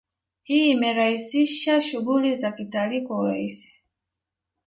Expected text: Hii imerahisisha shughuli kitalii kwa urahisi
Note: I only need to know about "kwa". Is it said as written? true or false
true